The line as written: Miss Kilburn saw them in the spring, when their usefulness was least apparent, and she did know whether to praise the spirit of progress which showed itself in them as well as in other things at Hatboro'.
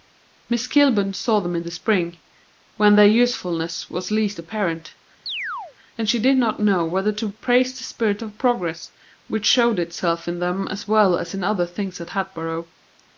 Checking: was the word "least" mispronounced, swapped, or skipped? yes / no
no